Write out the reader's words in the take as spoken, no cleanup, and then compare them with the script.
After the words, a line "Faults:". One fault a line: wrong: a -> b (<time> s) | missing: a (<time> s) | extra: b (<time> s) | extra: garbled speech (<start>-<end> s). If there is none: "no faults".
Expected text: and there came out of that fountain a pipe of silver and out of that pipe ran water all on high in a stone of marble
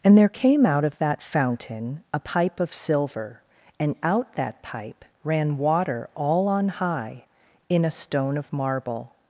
and there came out of that fountain a pipe of silver and out that pipe ran water all on high in a stone of marble
Faults:
missing: of (4.3 s)